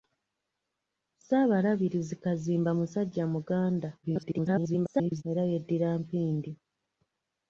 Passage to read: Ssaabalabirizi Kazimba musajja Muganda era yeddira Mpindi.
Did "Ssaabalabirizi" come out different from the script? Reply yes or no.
no